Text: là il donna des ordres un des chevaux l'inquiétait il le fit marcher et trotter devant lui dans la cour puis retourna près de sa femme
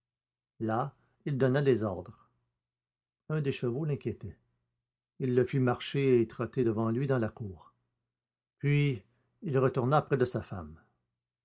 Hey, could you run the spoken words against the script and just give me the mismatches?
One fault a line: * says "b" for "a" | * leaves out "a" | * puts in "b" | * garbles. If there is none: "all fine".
* puts in "il"